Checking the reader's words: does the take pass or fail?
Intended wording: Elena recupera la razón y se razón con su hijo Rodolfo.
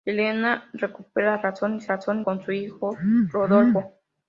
pass